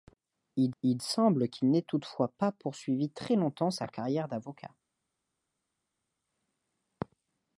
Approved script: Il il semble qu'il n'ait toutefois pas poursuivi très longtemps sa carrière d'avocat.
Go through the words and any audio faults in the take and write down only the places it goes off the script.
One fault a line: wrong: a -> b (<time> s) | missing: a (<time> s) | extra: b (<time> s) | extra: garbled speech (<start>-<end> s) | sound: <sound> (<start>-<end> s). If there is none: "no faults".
no faults